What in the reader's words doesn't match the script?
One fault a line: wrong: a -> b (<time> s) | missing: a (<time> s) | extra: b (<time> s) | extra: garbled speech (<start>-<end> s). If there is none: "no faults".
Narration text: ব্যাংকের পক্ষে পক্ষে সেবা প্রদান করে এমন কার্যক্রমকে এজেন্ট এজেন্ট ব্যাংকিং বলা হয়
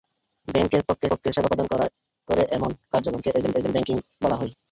no faults